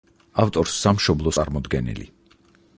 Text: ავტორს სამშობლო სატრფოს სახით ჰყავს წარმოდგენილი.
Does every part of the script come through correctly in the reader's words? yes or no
no